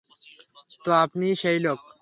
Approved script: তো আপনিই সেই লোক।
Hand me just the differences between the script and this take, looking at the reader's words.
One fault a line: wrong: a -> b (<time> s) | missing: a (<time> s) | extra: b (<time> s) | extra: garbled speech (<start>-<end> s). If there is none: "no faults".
no faults